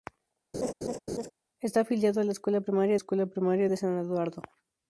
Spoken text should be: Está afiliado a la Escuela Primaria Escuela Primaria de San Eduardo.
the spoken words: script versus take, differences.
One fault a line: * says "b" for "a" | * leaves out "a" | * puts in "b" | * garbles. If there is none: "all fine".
all fine